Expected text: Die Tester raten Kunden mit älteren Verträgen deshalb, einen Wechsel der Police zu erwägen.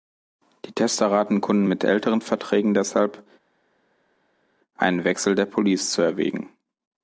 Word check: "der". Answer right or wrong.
right